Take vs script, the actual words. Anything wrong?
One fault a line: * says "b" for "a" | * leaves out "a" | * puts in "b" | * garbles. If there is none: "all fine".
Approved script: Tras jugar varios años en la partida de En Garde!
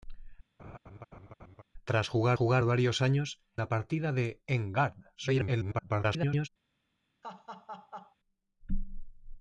* puts in "jugar"
* leaves out "en"
* garbles